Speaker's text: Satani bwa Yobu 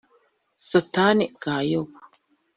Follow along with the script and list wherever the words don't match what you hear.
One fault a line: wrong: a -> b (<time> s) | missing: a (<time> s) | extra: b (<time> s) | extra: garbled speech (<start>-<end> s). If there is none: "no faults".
no faults